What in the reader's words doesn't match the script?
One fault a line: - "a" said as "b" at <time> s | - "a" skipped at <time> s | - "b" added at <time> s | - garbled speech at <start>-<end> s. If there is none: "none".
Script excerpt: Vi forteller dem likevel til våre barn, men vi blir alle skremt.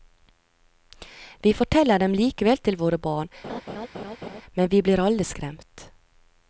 none